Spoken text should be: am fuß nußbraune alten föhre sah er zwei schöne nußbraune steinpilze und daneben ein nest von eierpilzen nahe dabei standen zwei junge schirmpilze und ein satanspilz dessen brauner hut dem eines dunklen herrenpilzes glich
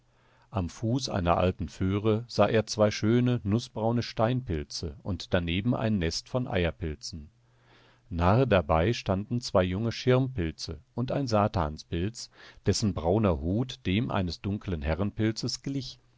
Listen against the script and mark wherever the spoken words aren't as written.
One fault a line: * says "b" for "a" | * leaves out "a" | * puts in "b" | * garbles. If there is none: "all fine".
* says "einer" for "nußbraune"